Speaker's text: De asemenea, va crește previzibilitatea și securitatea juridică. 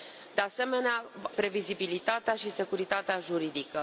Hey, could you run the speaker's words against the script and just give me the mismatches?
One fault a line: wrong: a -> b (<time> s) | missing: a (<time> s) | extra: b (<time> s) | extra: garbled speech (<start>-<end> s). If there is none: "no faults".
missing: va crește (1.1 s)